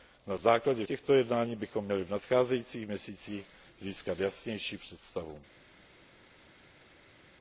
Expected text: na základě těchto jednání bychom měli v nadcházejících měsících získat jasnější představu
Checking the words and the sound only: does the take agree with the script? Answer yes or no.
yes